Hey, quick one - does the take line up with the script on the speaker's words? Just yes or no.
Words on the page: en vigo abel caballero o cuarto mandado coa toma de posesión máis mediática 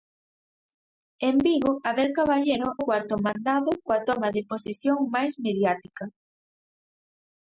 yes